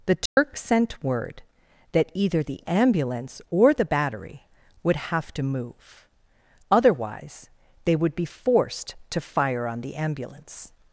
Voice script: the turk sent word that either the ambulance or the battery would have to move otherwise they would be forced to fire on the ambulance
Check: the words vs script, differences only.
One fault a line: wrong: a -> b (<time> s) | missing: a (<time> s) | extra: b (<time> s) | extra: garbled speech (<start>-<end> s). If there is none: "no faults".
no faults